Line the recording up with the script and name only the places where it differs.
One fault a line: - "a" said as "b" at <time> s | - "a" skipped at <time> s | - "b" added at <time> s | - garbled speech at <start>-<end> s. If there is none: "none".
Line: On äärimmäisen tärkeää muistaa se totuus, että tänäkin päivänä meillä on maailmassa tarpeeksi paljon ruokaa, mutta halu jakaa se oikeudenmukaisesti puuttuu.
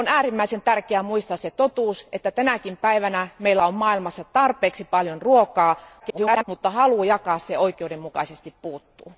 - garbled speech at 6.0-6.4 s